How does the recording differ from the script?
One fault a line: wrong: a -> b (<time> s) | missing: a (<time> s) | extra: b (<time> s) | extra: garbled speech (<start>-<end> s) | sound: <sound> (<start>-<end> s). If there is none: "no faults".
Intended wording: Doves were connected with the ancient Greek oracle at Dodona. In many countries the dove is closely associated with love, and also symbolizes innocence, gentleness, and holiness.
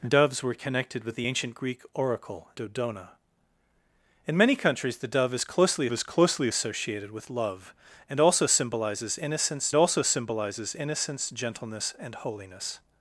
missing: at (2.5 s)
extra: is closely (5.9 s)
extra: also symbolizes innocence (9.7 s)